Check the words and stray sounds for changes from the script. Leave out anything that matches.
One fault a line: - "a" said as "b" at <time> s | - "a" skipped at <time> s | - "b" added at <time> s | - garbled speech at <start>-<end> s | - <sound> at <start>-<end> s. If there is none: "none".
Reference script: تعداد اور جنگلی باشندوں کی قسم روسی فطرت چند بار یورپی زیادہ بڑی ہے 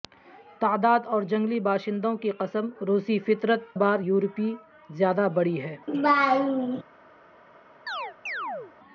- "چند" skipped at 3.8 s
- laugh at 5.9-6.8 s
- chirp at 7.9-8.7 s